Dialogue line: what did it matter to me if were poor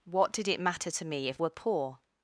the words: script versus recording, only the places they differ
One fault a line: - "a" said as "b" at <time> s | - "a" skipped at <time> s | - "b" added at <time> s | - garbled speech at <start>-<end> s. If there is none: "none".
none